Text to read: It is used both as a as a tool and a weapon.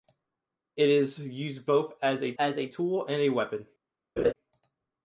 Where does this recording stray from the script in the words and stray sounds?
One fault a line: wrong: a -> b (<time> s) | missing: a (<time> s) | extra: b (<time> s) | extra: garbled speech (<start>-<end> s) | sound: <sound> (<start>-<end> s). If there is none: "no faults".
sound: laugh (4.2-4.3 s)